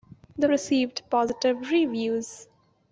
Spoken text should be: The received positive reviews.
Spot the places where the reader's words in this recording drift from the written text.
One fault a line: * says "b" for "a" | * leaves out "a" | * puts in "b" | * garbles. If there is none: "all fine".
all fine